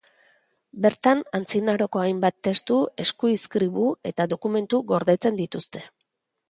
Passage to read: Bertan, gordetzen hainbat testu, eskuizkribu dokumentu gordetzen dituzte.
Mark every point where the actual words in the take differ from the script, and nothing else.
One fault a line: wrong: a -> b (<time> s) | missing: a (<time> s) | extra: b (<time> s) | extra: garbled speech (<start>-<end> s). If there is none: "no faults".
wrong: gordetzen -> antzinaroko (1.4 s)
extra: eta (4.1 s)